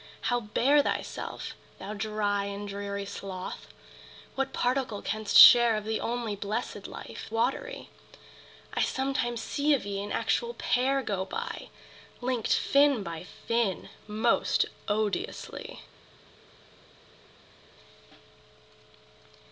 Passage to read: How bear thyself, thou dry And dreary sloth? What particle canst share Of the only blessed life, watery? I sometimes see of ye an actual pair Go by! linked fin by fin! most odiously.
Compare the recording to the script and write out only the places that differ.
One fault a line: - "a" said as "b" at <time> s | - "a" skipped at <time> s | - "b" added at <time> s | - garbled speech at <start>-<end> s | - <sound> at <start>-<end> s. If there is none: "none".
none